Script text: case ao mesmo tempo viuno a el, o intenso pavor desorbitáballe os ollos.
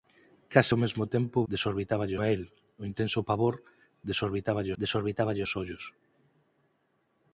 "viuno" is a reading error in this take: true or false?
true